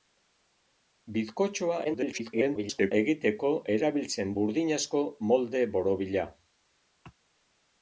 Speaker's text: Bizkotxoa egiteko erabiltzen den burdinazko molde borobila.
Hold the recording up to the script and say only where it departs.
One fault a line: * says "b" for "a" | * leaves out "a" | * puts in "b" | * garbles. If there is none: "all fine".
* garbles
* leaves out "den"